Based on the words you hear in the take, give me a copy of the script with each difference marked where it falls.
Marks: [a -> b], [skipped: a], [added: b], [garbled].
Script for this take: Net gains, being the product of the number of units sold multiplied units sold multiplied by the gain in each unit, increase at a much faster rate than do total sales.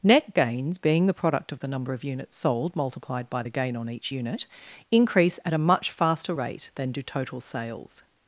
Net gains, being the product of the number of units sold multiplied [skipped: units sold multiplied] by the gain [in -> on] each unit, increase at a much faster rate than do total sales.